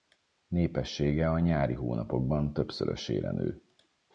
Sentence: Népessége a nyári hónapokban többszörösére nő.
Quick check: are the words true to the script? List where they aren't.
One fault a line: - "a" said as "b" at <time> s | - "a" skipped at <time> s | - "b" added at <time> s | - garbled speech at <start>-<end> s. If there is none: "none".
none